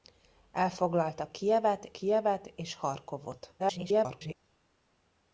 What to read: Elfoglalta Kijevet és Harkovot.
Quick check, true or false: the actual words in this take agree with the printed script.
false